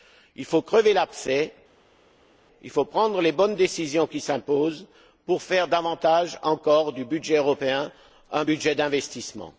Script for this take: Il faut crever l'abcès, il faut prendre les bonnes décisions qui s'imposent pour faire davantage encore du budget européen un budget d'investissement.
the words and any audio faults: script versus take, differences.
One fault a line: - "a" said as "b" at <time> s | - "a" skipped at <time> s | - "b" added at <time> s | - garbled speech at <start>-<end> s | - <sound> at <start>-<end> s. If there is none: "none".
none